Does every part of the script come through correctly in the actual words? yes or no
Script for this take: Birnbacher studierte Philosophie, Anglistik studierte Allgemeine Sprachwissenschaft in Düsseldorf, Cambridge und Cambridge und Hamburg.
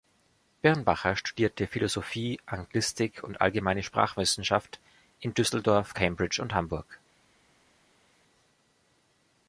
no